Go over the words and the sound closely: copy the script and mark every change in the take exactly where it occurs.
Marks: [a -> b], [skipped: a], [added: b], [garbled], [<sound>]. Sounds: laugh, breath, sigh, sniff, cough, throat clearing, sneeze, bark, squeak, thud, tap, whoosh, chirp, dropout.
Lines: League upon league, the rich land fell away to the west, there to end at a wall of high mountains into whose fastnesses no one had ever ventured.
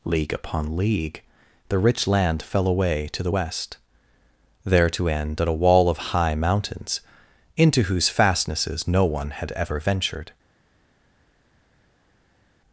League upon league, the rich land fell away to the west, there to end at a wall of high mountains into whose fastnesses no one had ever ventured.